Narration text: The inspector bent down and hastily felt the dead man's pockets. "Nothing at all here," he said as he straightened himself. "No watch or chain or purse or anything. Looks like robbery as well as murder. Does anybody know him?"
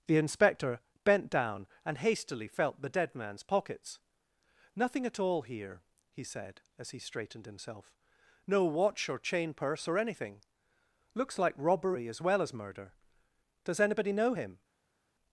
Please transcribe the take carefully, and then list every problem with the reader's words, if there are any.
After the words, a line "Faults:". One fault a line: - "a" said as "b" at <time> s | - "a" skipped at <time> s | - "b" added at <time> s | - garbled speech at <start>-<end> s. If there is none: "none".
The inspector bent down and hastily felt the dead man's pockets. "Nothing at all here," he said as he straightened himself. "No watch or chain purse or anything. Looks like robbery as well as murder. Does anybody know him?"
Faults:
- "or" skipped at 9.5 s